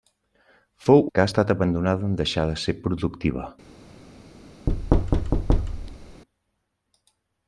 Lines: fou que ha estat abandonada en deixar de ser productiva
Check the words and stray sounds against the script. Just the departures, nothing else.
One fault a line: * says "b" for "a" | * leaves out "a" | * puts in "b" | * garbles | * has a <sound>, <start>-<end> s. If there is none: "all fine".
* has a thud, 4.7-6.2 s